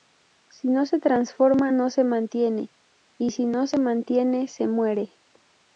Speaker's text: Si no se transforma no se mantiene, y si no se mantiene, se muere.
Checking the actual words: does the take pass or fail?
pass